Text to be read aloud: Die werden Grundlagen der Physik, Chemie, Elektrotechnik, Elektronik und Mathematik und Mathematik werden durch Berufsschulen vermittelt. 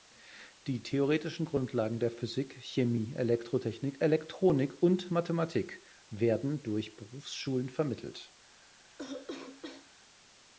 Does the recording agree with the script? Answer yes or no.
no